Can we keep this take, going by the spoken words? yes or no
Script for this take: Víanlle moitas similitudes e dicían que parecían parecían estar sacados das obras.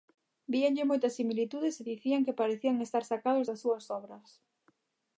no